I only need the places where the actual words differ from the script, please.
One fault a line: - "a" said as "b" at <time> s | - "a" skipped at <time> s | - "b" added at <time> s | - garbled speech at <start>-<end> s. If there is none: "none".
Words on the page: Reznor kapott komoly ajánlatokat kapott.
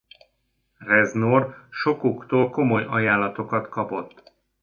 - "kapott" said as "sokuktól" at 1.7 s